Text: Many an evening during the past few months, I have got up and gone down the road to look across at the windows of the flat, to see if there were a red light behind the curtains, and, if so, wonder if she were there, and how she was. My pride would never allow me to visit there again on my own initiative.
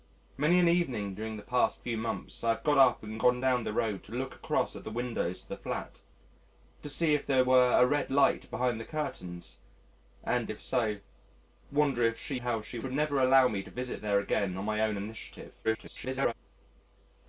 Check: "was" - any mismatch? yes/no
yes